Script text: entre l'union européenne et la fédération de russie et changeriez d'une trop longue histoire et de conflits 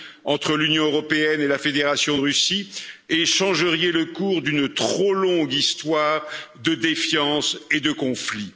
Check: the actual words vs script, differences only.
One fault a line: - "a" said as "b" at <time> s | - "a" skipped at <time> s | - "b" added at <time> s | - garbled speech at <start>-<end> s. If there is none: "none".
- "le cours" added at 3.9 s
- "de défiance" added at 6.6 s